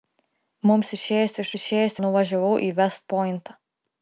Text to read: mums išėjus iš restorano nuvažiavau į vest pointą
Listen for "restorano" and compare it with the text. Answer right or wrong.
wrong